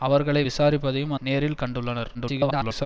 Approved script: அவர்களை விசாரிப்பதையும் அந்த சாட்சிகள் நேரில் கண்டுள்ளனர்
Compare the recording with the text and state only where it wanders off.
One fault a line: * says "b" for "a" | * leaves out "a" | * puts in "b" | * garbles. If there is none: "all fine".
* leaves out "அந்த சாட்சிகள்"
* garbles